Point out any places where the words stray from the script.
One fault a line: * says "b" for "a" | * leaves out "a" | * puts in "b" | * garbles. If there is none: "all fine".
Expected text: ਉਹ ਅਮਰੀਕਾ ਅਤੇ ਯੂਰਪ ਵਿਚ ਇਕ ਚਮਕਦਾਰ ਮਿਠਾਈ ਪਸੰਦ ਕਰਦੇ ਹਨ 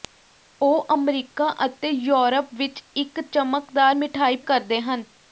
* leaves out "ਪਸੰਦ"